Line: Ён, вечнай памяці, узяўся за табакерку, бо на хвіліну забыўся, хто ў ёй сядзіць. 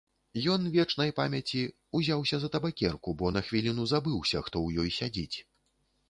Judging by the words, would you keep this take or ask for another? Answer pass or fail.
pass